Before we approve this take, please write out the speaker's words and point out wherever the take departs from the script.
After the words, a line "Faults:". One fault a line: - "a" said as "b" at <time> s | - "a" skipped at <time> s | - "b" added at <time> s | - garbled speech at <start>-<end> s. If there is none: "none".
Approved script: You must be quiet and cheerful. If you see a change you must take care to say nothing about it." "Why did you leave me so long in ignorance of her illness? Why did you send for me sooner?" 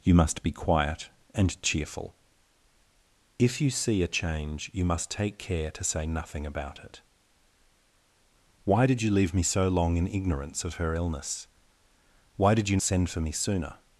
You must be quiet and cheerful. If you see a change you must take care to say nothing about it." "Why did you leave me so long in ignorance of her illness? Why did you send for me sooner?"
Faults:
none